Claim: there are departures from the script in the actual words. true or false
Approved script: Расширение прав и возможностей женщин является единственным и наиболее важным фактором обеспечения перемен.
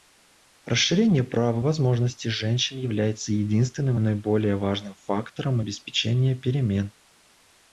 false